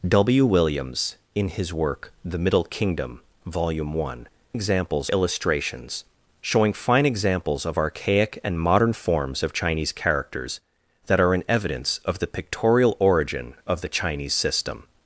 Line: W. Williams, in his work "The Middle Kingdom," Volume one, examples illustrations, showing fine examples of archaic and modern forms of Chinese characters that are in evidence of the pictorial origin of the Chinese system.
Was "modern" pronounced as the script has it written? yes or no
yes